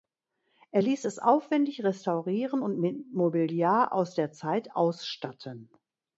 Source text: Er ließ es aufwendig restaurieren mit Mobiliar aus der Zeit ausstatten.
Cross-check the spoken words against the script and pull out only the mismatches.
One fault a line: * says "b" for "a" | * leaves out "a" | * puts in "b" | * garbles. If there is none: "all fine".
* puts in "und"